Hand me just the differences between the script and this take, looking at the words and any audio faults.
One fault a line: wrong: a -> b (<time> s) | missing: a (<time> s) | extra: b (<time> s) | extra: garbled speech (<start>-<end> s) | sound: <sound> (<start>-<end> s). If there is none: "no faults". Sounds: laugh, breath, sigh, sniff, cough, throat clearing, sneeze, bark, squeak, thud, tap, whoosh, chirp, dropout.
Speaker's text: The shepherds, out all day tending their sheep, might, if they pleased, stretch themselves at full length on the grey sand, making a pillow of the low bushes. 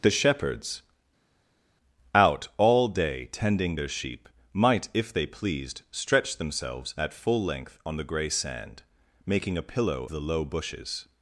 missing: of (10.0 s)